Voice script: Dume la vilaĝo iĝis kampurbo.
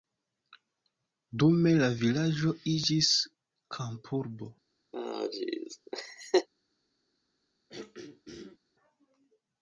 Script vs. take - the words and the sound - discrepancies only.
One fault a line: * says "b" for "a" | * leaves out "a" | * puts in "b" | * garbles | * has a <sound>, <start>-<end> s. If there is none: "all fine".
* has a laugh, 4.9-6.5 s
* has a throat clearing, 7.7-8.6 s